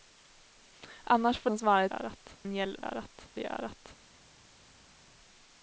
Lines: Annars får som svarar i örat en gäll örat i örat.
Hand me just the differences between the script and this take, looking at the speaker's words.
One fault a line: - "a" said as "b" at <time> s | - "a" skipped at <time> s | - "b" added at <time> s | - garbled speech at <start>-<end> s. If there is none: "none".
none